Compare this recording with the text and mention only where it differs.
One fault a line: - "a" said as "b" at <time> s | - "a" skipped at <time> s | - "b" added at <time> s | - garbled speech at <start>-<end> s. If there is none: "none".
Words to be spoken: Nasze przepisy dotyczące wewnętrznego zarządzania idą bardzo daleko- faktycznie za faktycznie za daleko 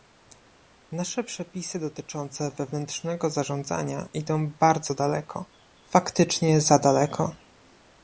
- "faktycznie za" skipped at 6.8 s